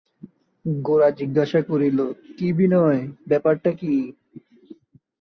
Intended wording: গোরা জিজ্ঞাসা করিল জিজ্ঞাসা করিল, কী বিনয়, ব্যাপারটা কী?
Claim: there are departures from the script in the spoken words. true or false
true